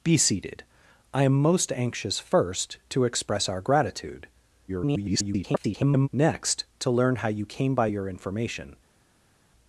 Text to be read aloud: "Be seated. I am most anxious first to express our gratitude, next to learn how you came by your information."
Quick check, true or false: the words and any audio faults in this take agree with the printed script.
false